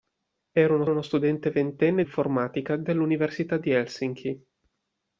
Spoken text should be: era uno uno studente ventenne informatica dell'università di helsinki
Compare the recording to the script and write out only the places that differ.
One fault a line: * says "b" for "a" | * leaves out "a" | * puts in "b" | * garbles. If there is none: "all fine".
all fine